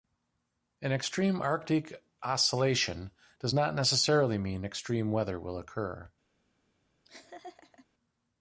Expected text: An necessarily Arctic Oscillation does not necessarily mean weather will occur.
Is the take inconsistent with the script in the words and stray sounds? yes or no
yes